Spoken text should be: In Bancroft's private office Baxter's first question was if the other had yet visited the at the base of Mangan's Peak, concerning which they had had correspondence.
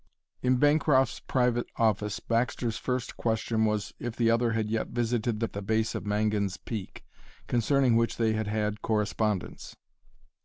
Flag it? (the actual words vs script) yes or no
no